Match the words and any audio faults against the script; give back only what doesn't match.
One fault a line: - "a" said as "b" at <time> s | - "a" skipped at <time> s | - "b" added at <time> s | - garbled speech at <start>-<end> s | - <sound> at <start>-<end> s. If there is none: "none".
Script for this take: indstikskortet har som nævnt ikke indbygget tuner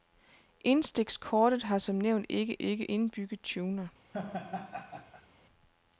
- "ikke" added at 2.6 s
- laugh at 4.1-5.3 s